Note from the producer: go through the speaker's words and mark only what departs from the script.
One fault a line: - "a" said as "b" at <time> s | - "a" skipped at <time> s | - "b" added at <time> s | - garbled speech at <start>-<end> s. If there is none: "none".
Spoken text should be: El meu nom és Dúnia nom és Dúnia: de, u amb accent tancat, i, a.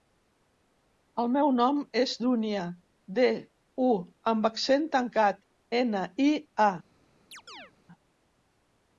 - "nom és Dúnia" skipped at 2.6 s
- "ena" added at 5.8 s